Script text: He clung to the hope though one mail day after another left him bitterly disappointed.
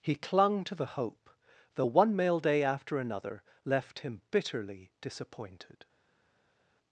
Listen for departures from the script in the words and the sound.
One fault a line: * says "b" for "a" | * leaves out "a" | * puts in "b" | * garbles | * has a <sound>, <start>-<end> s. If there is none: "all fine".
all fine